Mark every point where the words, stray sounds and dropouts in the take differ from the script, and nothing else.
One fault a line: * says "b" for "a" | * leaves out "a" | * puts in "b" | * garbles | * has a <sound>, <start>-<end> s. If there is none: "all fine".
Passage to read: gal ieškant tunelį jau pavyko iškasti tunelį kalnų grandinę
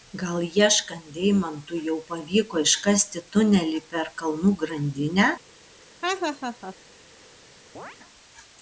* says "deimantų" for "tunelį"
* puts in "per"
* has a laugh, 6.0-6.8 s
* has a chirp, 7.7-8.0 s